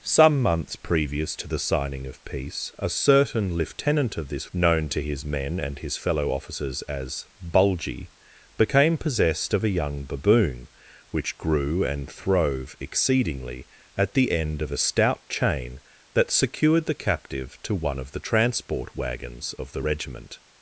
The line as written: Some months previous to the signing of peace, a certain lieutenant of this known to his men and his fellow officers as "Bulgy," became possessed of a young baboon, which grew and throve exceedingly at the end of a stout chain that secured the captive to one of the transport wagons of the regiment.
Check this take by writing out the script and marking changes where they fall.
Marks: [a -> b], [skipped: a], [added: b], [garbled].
Some months previous to the signing of peace, a certain lieutenant of this known to his men and his fellow officers as "Bulgy," became possessed of a young baboon, which grew and throve exceedingly at the end of a stout chain that secured the captive to one of the transport wagons of the regiment.